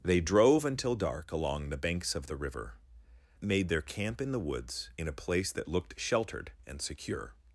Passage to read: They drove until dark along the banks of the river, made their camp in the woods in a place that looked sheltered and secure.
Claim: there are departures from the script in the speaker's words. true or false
false